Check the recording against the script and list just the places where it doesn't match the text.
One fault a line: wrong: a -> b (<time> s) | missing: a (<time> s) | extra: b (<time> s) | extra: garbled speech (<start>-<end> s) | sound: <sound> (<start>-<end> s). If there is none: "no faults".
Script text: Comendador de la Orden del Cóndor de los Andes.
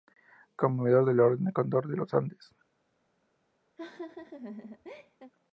sound: laugh (3.8-5.3 s)